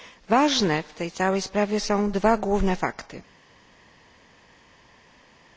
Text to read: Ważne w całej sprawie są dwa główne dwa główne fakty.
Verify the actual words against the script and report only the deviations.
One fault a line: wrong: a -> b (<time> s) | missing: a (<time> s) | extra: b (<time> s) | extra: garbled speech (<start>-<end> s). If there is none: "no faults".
extra: tej (0.9 s)
missing: dwa główne (2.8 s)